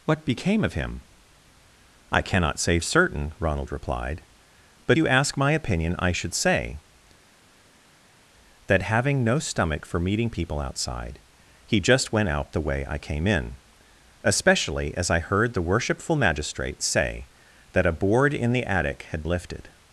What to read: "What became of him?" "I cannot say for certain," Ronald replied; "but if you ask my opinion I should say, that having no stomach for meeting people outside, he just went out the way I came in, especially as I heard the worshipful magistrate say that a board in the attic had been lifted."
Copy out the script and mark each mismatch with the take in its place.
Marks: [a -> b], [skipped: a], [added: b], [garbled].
"What became of him?" "I cannot say [skipped: for] certain," Ronald replied; "but [skipped: if] you ask my opinion I should say, that having no stomach for meeting people outside, he just went out the way I came in, especially as I heard the worshipful magistrate say that a board in the attic had [skipped: been] lifted."